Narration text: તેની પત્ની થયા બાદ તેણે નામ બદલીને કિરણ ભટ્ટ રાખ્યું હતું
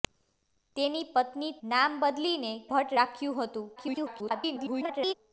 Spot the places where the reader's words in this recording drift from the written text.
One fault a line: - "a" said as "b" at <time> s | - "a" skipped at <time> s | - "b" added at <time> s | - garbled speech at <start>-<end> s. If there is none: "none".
- "થયા બાદ તેણે" skipped at 1.5 s
- "કિરણ" skipped at 2.5 s
- garbled speech at 3.8-5.1 s